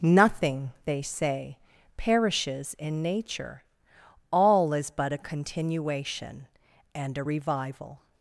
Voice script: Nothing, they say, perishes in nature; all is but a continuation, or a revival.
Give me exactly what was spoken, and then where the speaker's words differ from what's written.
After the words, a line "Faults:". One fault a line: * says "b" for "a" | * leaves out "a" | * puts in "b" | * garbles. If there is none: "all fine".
Nothing, they say, perishes in nature; all is but a continuation, and a revival.
Faults:
* says "and" for "or"